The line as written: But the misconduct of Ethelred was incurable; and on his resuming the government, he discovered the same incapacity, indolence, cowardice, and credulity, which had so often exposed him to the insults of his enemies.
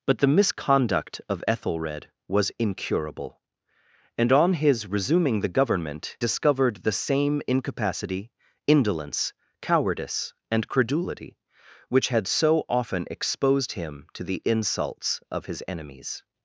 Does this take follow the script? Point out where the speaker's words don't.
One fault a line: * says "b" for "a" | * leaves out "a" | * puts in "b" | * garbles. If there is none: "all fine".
* leaves out "he"